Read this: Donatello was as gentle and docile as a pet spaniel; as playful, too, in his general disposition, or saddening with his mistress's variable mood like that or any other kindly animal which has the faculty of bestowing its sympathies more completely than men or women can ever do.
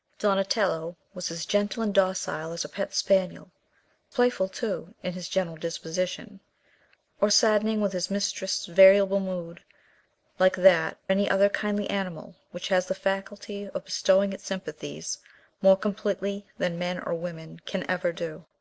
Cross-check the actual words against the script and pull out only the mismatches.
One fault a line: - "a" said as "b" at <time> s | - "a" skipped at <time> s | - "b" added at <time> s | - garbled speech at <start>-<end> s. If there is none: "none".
- "as" skipped at 3.5 s
- "or" skipped at 11.0 s